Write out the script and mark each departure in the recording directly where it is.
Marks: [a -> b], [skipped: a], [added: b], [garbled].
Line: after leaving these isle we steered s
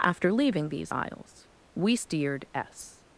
after leaving these [isle -> isles] we steered s